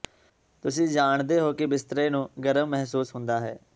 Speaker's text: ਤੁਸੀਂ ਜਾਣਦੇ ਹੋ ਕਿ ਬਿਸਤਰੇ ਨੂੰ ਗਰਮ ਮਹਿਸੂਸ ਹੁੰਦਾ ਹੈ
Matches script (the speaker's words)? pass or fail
pass